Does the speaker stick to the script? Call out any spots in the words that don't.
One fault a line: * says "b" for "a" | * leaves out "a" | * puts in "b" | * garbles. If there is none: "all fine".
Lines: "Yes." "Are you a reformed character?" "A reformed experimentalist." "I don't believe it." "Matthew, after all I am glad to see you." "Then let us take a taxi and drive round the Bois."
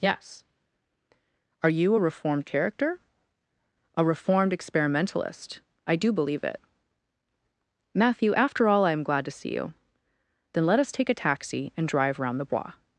* says "do" for "don't"